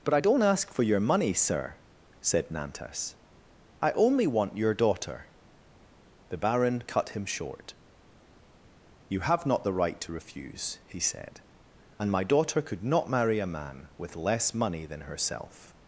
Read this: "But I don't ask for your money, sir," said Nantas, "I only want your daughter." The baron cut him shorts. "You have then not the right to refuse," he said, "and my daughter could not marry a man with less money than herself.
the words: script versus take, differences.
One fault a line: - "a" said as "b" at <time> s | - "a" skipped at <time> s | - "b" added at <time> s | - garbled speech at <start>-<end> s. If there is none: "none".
- "shorts" said as "short" at 7.2 s
- "then" skipped at 9.4 s